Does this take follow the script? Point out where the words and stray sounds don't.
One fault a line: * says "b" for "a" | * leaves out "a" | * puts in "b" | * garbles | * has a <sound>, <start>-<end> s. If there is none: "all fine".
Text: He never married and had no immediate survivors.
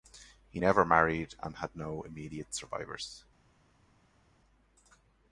all fine